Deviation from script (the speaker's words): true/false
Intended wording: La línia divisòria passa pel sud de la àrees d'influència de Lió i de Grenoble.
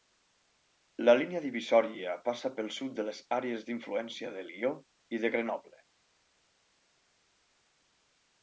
true